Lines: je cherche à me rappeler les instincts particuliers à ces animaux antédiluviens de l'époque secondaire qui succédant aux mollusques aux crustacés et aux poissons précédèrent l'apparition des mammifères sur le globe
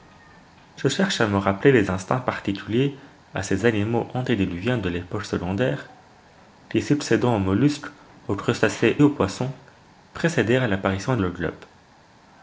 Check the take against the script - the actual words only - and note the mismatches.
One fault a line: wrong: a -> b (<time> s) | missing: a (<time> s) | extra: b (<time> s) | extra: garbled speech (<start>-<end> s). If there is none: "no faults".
missing: et (9.0 s)
missing: des mammifères sur (11.2 s)